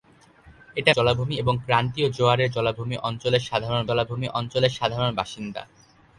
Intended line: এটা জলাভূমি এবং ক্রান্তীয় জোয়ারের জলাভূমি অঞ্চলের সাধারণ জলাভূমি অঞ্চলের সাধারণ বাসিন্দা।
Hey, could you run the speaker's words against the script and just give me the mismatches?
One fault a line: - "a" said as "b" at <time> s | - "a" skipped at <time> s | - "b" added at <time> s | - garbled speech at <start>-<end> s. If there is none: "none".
none